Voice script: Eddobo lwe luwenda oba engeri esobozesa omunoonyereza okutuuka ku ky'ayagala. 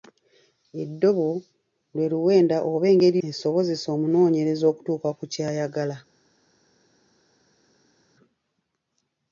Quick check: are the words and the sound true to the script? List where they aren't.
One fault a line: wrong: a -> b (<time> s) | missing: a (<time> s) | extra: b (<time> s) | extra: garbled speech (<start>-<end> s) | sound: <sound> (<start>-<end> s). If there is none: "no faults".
no faults